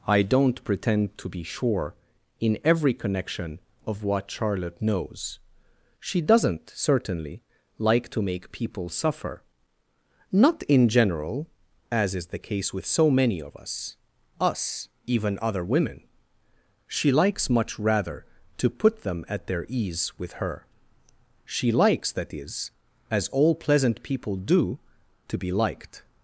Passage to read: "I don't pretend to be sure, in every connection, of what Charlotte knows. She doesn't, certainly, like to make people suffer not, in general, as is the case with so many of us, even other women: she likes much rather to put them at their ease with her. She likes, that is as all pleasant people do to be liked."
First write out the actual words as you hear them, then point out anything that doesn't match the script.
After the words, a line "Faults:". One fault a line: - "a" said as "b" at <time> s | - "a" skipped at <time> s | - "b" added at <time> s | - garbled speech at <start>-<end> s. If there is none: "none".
"I don't pretend to be sure, in every connection, of what Charlotte knows. She doesn't, certainly, like to make people suffer not, in general, as is the case with so many of us us, even other women: she likes much rather to put them at their ease with her. She likes, that is as all pleasant people do to be liked."
Faults:
- "us" added at 14.4 s